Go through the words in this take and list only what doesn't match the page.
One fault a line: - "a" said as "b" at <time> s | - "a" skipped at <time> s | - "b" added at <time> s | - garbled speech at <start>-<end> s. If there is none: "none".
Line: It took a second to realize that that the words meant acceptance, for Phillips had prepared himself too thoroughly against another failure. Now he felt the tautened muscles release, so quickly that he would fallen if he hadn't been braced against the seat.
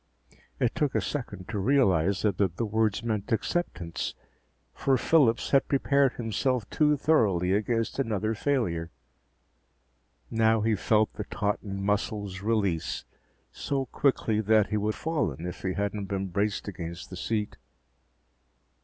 none